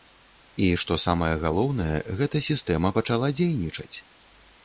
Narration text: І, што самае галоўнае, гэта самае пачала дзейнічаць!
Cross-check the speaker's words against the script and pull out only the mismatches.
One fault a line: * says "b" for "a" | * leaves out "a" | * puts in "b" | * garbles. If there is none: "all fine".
* says "сістэма" for "самае"